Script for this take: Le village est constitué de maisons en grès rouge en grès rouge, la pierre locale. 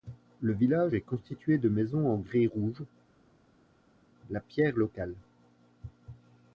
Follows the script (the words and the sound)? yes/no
no